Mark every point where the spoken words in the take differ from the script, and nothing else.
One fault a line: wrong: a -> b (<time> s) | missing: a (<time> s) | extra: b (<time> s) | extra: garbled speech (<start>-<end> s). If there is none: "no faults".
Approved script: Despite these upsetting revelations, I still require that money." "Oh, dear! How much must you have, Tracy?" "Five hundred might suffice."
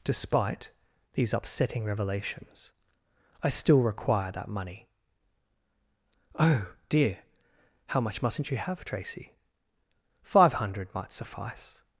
wrong: must -> mustn't (8.2 s)